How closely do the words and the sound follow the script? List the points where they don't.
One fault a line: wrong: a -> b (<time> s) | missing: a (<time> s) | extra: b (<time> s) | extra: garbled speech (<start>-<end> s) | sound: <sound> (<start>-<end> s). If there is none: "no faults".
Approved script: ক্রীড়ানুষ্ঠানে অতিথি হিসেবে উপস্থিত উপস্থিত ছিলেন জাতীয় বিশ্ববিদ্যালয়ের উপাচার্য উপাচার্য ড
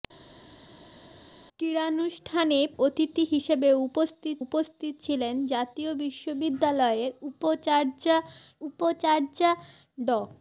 no faults